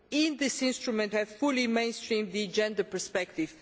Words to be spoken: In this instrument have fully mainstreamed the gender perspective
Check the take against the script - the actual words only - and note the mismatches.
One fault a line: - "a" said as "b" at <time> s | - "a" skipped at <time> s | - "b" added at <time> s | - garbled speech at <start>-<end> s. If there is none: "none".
none